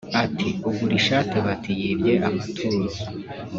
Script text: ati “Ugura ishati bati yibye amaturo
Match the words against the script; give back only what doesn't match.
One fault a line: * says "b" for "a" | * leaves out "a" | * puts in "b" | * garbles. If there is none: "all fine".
all fine